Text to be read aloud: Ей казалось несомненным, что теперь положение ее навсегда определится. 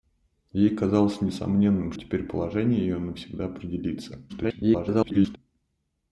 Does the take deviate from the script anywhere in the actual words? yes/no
yes